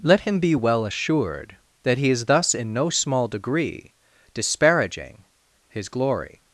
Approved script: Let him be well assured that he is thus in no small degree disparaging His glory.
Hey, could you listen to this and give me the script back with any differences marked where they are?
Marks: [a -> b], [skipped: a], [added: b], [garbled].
Let him be well assured that he is thus in no small degree disparaging His glory.